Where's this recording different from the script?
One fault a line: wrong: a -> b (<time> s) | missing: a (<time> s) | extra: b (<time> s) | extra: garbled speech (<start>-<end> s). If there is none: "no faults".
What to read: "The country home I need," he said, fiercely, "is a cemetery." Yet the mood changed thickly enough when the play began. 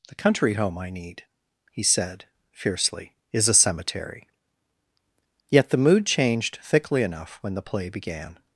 no faults